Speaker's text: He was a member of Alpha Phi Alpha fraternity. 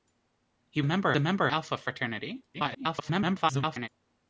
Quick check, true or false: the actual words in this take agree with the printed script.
false